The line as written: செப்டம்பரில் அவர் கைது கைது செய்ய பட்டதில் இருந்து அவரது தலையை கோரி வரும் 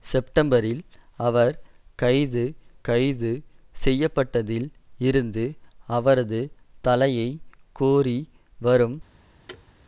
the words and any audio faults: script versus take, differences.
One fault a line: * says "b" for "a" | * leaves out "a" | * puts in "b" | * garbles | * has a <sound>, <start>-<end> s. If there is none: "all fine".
* has a thud, 9.5-9.7 s